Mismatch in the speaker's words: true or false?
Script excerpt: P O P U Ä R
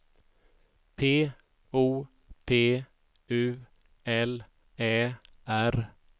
true